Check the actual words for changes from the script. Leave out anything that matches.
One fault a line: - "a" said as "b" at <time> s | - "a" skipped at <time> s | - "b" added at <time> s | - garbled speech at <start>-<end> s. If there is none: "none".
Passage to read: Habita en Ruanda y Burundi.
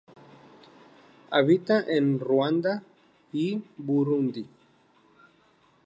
none